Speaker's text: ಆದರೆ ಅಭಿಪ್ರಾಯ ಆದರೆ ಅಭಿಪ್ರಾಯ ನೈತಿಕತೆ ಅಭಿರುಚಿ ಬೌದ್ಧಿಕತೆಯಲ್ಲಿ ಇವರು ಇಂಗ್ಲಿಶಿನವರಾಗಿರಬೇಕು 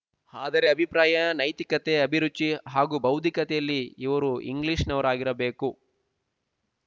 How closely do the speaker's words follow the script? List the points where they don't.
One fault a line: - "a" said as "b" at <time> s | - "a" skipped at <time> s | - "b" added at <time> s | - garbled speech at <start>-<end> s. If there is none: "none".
- "ಆದರೆ ಅಭಿಪ್ರಾಯ" skipped at 1.2 s
- "ಹಾಗೂ" added at 2.7 s